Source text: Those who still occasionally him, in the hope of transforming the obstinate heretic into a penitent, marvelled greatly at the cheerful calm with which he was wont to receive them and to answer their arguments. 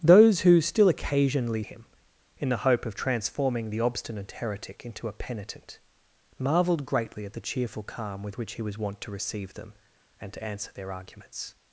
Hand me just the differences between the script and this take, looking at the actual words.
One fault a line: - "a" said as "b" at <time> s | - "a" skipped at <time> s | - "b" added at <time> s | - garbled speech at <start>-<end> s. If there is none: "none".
none